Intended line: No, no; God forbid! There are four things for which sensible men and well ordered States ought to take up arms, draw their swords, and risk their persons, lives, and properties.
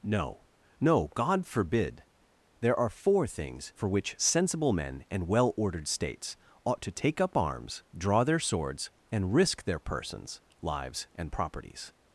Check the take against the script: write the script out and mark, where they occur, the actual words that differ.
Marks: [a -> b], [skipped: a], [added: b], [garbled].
No, no; God forbid! There are four things for which sensible men and well ordered States ought to take up arms, draw their swords, and risk their persons, lives, and properties.